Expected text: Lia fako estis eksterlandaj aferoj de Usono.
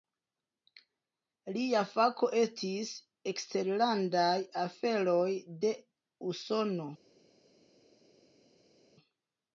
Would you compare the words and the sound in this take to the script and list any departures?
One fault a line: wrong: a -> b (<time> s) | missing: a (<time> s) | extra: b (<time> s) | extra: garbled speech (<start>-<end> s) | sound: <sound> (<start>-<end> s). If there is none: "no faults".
no faults